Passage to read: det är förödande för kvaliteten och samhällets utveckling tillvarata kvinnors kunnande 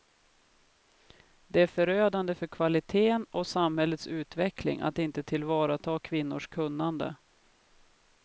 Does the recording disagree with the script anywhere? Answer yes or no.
yes